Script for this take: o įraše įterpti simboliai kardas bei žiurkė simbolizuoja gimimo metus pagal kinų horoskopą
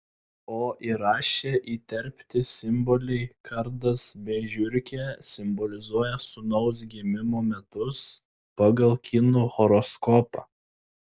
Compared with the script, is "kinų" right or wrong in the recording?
right